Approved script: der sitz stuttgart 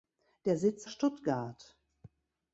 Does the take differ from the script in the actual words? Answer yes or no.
no